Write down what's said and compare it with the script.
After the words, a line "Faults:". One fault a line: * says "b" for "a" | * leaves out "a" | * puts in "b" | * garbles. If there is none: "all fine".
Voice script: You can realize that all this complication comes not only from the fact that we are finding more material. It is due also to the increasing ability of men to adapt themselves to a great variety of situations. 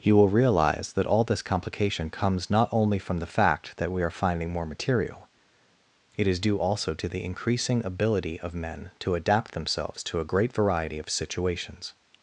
You will realize that all this complication comes not only from the fact that we are finding more material. It is due also to the increasing ability of men to adapt themselves to a great variety of situations.
Faults:
* says "will" for "can"